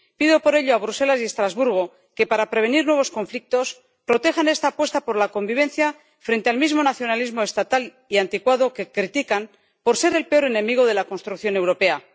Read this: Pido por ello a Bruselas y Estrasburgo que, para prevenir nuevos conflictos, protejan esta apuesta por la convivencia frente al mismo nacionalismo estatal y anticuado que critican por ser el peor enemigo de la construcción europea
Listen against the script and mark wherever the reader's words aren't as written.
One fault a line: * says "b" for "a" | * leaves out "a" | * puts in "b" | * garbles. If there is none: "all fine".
all fine